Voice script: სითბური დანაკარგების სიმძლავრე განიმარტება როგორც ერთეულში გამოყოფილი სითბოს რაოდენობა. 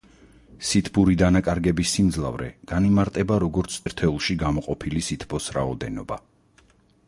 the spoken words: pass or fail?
pass